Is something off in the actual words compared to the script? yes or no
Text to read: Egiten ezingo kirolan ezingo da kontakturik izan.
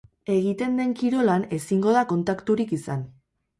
yes